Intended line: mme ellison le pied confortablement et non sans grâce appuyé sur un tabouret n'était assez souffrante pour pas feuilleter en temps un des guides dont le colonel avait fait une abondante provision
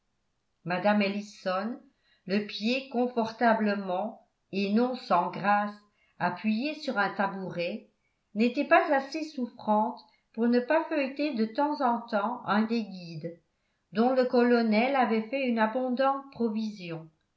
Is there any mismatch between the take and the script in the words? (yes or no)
yes